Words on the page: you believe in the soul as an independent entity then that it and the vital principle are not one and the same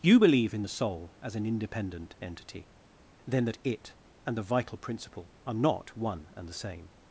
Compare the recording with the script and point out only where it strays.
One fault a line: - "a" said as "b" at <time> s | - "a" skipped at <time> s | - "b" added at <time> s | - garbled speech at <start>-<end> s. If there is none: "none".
none